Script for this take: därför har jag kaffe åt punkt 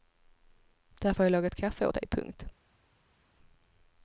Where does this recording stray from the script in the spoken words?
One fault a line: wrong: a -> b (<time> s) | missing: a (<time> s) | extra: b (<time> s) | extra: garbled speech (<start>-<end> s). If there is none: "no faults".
extra: lagat (1.3 s)
extra: dig (1.9 s)